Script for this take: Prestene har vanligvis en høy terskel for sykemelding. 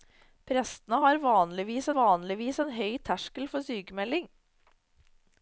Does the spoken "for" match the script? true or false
true